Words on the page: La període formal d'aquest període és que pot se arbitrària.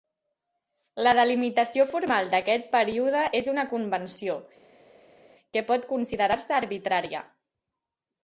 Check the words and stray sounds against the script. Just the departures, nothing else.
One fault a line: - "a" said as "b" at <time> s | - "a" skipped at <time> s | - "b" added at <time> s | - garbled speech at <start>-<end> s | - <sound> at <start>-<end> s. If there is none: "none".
- "període" said as "delimitació" at 1.2 s
- "una convenció" added at 3.5 s
- "considerar" added at 5.9 s